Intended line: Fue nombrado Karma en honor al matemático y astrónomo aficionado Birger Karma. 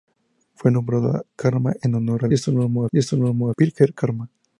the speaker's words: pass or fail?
fail